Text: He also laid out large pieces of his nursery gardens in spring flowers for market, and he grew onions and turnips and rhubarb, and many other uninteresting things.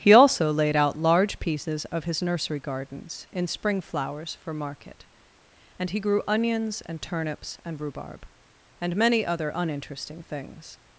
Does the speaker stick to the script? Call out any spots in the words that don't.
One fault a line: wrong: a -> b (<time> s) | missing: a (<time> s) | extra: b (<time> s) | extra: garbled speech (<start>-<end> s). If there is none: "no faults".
no faults